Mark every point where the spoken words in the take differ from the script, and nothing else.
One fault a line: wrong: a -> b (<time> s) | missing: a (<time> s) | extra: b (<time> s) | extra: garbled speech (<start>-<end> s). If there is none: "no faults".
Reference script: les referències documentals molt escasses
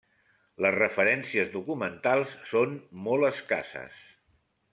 extra: són (2.5 s)